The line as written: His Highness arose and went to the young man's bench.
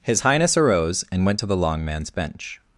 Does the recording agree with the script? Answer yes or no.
no